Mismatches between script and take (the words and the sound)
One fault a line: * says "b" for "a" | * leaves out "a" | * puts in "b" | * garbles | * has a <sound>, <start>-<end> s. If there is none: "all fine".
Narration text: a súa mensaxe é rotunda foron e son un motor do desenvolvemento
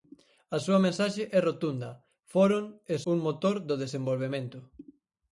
* leaves out "son"